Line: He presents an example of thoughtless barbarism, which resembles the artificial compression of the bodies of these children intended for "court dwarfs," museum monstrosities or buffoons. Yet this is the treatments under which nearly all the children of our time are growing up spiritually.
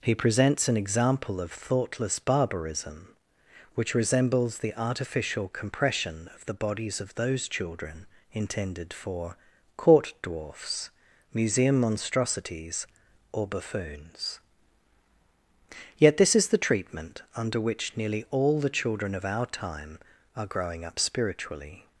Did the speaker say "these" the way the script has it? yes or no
no